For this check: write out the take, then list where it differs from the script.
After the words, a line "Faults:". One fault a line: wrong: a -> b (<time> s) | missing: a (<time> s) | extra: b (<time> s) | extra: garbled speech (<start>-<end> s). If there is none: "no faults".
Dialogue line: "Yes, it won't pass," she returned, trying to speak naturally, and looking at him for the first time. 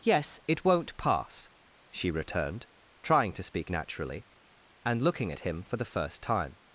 "Yes, it won't pass," she returned, trying to speak naturally, and looking at him for the first time.
Faults:
no faults